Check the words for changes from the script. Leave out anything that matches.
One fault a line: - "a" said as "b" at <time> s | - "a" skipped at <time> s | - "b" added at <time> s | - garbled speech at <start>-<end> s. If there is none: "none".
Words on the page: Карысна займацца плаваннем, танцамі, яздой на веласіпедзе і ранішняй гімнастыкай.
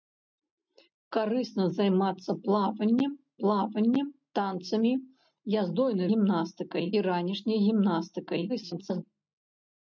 - "плаваннем" added at 3.4 s
- "веласіпедзе" said as "гімнастыкай" at 6.1 s
- garbled speech at 8.5-9.0 s